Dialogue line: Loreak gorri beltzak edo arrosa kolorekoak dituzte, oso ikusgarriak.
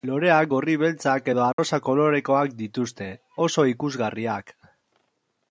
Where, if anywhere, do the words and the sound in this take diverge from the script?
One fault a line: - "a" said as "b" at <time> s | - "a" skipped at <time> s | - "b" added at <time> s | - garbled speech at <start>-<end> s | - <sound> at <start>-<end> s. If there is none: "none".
- dropout at 1.5-1.6 s